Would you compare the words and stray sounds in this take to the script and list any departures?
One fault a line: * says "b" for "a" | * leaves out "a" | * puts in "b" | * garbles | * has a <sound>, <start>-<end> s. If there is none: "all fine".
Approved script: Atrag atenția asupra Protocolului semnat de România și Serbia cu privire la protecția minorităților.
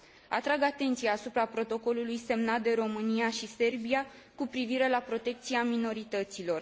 all fine